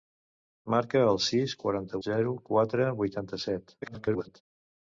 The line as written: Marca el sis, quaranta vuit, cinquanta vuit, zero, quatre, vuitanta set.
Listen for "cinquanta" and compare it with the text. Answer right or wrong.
wrong